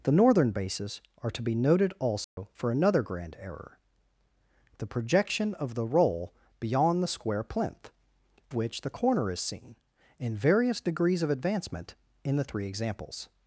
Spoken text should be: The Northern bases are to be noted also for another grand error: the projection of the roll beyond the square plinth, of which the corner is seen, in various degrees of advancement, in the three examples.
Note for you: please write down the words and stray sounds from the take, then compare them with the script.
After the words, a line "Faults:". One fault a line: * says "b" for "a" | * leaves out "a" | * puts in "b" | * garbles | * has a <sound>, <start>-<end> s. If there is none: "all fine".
The Northern bases are to be noted also for another grand error: the projection of the roll beyond the square plinth, which the corner is seen, in various degrees of advancement, in the three examples.
Faults:
* has a dropout, 2.2-2.4 s
* leaves out "of"